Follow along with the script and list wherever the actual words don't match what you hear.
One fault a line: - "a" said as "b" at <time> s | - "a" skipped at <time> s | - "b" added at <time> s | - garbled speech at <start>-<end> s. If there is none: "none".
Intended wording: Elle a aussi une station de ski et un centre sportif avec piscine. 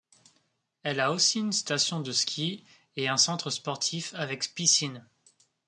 none